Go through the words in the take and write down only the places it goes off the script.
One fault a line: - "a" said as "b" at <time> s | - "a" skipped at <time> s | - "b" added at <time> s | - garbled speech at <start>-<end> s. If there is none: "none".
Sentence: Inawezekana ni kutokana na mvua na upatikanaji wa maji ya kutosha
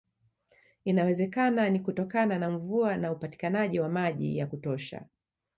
none